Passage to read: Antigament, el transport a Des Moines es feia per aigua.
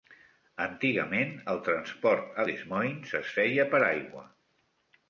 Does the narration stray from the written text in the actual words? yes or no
no